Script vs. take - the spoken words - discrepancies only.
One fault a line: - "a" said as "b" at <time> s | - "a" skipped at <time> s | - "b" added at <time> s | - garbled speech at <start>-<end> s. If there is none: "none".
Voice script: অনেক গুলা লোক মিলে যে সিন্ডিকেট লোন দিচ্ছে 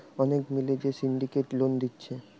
- "গুলা লোক" skipped at 0.4 s